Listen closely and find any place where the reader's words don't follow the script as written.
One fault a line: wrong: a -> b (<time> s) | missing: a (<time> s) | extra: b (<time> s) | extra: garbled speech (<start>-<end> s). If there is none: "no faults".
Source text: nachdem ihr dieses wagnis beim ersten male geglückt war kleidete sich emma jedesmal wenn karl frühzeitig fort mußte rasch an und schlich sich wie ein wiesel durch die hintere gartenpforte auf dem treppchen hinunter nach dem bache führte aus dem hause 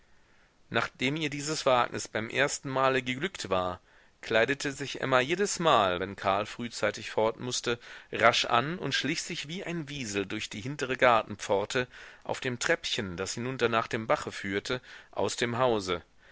extra: das (13.2 s)